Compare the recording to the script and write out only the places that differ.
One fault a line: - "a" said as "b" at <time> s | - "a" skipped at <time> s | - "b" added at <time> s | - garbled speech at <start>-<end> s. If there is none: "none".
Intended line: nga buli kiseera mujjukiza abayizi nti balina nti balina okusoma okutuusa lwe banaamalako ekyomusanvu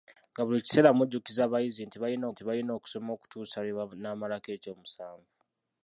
none